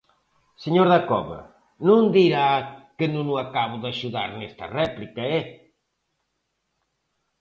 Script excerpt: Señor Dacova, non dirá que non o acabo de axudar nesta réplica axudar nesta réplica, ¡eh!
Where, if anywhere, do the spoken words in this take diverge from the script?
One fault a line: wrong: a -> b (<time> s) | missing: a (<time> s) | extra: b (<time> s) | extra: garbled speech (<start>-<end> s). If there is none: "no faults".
missing: axudar nesta réplica (5.2 s)